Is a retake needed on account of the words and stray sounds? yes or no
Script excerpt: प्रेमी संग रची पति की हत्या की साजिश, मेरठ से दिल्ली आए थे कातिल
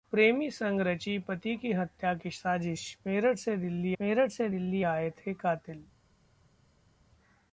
yes